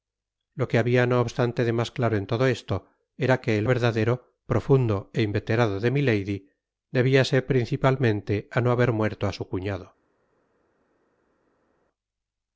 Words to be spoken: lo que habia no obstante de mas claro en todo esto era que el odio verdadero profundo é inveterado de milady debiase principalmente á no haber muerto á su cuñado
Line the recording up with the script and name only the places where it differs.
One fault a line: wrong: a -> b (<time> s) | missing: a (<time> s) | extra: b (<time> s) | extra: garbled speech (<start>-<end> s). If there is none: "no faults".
missing: odio (3.6 s)